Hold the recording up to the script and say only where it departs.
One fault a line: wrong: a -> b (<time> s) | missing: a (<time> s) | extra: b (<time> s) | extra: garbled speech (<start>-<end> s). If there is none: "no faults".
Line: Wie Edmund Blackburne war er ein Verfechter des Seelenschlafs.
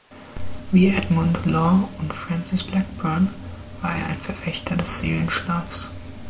extra: Law und Francis (1.4 s)